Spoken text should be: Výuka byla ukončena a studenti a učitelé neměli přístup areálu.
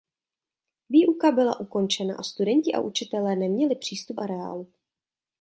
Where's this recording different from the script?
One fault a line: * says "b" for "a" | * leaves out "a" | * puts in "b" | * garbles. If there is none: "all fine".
all fine